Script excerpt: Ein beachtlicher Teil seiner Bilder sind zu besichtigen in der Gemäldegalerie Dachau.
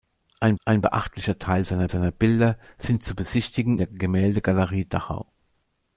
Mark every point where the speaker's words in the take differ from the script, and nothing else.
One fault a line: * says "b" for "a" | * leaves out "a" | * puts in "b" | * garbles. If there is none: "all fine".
* puts in "ein"
* puts in "seiner"
* leaves out "in"